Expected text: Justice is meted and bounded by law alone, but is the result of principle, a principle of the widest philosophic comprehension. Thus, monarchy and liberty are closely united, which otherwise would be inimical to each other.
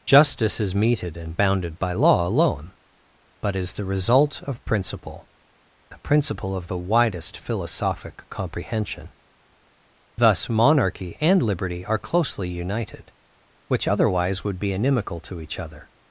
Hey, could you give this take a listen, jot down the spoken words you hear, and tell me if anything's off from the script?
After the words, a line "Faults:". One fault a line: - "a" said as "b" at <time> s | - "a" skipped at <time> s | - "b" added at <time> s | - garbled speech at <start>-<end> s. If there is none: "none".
Justice is meted and bounded by law alone, but is the result of principle, a principle of the widest philosophic comprehension. Thus, monarchy and liberty are closely united, which otherwise would be inimical to each other.
Faults:
none